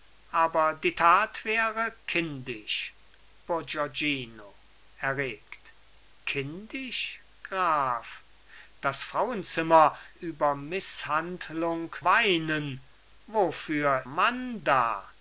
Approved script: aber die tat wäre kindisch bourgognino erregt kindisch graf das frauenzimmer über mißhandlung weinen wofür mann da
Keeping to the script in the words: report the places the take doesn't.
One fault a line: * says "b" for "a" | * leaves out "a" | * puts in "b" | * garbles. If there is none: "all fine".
all fine